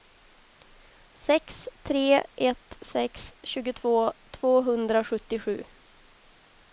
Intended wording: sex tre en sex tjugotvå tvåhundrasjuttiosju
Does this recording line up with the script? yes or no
no